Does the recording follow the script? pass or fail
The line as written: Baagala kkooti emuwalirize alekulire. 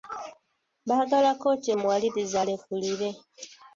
pass